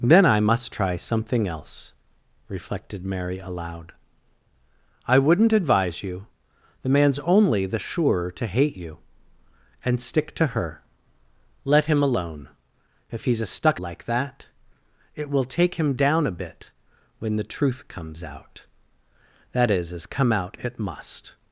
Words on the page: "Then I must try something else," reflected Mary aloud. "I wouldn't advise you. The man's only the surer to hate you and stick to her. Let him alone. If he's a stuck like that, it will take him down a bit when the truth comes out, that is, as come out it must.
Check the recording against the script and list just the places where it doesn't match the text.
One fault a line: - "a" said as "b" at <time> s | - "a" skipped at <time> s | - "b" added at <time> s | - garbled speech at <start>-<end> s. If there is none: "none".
none